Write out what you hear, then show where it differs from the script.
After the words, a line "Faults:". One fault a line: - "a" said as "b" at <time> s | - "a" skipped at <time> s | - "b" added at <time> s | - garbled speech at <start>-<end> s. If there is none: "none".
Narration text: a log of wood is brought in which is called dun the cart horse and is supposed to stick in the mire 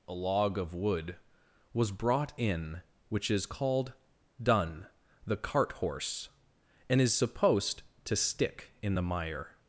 a log of wood was brought in which is called dun the cart horse and is supposed to stick in the mire
Faults:
- "is" said as "was" at 1.7 s